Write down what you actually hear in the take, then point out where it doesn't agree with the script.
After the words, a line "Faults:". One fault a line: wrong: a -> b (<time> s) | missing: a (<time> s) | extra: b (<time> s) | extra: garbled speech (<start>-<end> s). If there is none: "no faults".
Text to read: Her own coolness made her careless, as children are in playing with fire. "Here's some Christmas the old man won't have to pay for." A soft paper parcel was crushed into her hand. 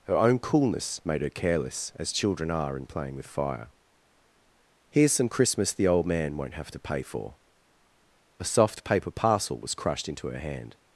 Her own coolness made her careless, as children are in playing with fire. "Here's some Christmas the old man won't have to pay for." A soft paper parcel was crushed into her hand.
Faults:
no faults